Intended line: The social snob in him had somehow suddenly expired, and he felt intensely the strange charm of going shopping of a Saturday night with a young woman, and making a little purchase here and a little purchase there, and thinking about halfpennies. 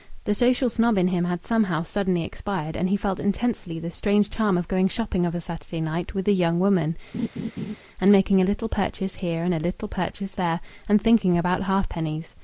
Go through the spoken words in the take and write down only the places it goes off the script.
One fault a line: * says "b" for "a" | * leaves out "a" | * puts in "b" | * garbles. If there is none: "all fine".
all fine